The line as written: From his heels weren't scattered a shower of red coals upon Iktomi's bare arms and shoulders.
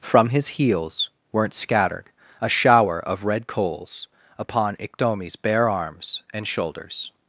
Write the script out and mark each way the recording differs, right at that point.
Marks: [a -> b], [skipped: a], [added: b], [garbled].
From his heels weren't scattered a shower of red coals upon Iktomi's bare arms and shoulders.